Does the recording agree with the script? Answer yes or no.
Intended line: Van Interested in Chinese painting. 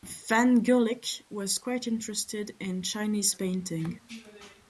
no